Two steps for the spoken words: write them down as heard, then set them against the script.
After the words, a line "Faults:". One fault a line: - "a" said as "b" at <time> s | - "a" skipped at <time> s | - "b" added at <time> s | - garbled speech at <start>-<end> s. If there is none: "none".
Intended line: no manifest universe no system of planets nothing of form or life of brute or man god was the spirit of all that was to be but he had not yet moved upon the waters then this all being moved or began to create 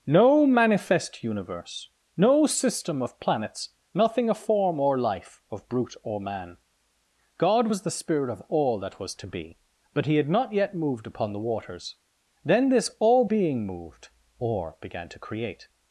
no manifest universe no system of planets nothing of form or life of brute or man god was the spirit of all that was to be but he had not yet moved upon the waters then this all being moved or began to create
Faults:
none